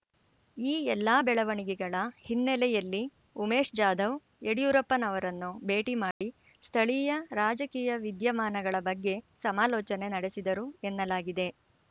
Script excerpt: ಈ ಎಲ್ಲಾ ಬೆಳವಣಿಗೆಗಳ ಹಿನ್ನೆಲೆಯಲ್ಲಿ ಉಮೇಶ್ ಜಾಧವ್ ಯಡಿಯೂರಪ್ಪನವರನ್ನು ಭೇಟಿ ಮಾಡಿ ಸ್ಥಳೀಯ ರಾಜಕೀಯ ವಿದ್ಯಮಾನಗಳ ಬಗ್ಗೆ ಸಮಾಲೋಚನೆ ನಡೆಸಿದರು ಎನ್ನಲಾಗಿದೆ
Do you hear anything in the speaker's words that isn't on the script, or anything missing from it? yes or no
no